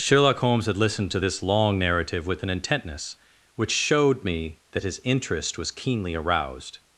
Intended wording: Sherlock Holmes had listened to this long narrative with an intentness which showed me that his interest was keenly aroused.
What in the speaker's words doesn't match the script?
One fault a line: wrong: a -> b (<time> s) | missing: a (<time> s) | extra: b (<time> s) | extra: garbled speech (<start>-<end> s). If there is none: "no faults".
no faults